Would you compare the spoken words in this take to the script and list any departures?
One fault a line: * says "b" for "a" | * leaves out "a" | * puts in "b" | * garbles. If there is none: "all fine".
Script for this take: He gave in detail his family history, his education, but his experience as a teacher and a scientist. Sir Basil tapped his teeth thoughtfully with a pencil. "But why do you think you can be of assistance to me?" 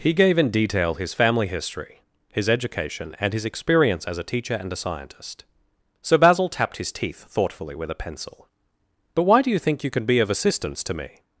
* says "and" for "but"